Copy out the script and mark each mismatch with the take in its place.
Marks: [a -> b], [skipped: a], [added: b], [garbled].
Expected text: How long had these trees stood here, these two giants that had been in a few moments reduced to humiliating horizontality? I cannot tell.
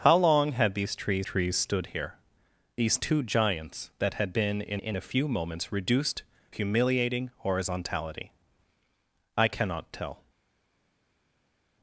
How long had these trees [added: trees] stood here, these two giants that had been in [added: in] a few moments reduced [skipped: to] humiliating horizontality? I cannot tell.